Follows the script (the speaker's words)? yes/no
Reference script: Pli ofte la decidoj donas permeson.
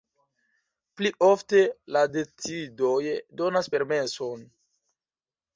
yes